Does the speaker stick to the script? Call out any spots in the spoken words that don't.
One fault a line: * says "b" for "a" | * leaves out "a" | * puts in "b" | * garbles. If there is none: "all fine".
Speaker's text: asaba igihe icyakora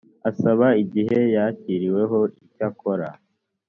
* puts in "yakiriweho"